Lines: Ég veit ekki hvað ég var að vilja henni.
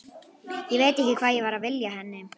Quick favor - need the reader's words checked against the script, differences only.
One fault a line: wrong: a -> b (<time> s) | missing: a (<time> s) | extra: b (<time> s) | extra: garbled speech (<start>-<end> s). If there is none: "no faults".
no faults